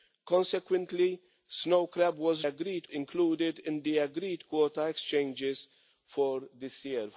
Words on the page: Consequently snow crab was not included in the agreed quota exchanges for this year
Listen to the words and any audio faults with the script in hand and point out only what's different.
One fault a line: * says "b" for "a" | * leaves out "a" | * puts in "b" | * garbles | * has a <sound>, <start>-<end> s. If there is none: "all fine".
* says "agreed" for "not"